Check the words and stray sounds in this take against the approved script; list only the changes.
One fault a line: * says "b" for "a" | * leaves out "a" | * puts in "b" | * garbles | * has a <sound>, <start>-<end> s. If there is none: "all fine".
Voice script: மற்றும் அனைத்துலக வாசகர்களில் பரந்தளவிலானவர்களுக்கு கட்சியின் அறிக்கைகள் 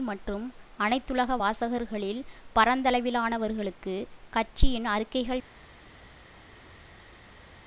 all fine